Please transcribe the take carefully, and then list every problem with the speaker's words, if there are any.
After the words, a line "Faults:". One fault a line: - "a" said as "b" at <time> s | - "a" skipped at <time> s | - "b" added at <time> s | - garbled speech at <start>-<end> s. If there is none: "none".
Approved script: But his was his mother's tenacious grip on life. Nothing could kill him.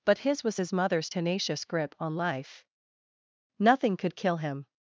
But his was his mother's tenacious grip on life. Nothing could kill him.
Faults:
none